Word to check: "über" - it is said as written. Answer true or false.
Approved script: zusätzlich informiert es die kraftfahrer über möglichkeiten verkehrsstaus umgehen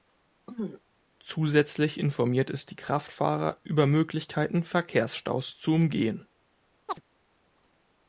true